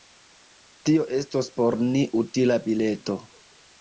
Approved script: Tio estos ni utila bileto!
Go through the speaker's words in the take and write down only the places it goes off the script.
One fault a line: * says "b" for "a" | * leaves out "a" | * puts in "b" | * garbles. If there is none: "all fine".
* puts in "por"